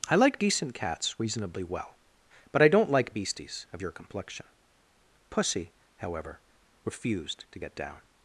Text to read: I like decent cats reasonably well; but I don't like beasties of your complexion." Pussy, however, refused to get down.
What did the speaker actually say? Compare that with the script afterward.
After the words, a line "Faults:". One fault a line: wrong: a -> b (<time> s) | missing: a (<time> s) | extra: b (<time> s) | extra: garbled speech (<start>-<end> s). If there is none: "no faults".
I like decent cats reasonably well; but I don't like beasties of your complexion." Pussy, however, refused to get down.
Faults:
no faults